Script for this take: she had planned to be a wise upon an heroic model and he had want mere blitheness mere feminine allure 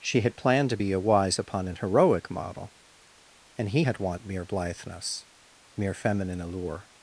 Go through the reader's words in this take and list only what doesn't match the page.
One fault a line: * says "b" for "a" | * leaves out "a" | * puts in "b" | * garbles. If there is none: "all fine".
all fine